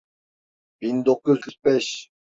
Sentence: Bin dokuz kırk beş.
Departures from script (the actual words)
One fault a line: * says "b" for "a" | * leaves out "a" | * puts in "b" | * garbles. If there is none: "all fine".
all fine